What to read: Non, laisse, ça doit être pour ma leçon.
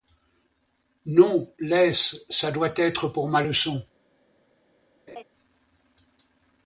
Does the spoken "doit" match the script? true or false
true